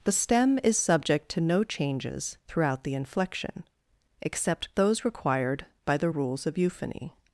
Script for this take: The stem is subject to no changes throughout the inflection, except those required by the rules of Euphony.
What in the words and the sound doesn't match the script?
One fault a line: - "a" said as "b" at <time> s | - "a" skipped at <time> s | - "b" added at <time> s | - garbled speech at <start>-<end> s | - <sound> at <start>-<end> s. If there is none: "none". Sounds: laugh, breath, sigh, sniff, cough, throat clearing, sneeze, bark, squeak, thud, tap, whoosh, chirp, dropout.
none